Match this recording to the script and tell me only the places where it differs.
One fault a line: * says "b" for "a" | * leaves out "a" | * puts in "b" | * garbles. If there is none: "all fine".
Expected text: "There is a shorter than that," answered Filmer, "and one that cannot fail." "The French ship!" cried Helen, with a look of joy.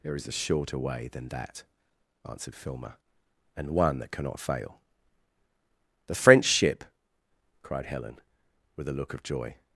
* puts in "way"